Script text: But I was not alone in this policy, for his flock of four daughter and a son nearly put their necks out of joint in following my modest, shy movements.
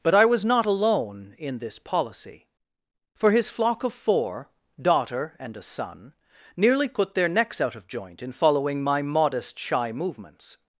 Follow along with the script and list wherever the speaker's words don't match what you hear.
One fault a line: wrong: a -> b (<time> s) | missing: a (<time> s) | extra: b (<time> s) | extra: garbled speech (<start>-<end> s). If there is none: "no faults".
no faults